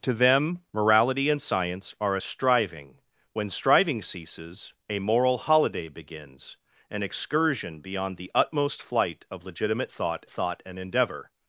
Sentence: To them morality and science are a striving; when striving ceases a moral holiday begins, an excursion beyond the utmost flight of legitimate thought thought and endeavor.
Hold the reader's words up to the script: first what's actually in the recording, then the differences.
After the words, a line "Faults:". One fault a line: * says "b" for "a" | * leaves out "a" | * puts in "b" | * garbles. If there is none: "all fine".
To them morality and science are a striving; when striving ceases a moral holiday begins, an excursion beyond the utmost flight of legitimate thought thought and endeavor.
Faults:
all fine